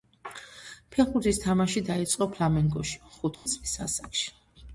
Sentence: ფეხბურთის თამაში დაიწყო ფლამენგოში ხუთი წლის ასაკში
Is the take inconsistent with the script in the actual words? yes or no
no